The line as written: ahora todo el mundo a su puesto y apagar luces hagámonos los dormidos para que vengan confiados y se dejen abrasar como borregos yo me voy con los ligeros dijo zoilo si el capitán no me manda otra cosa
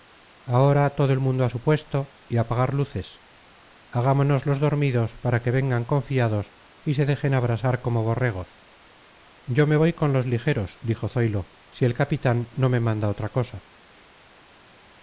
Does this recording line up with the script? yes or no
yes